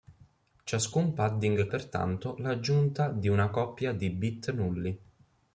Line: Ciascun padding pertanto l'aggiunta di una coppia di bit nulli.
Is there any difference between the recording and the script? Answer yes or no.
no